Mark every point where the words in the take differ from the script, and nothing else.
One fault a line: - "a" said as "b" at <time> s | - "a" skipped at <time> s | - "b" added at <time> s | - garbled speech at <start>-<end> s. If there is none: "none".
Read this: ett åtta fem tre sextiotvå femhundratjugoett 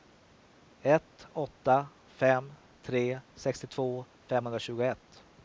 none